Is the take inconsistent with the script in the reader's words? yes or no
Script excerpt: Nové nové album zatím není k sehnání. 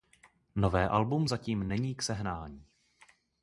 yes